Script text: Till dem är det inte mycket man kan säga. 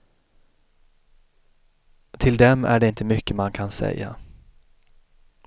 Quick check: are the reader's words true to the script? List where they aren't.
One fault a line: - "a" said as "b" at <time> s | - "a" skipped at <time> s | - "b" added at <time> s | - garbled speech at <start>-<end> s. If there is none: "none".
none